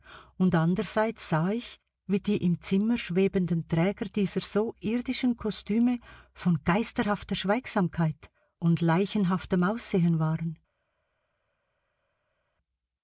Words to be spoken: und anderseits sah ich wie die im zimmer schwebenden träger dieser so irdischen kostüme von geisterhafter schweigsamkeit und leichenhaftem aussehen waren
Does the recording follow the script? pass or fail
pass